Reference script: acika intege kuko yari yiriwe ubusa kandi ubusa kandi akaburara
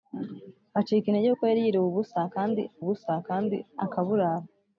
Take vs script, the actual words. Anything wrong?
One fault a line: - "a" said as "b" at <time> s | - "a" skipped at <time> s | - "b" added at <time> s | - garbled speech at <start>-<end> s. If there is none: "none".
none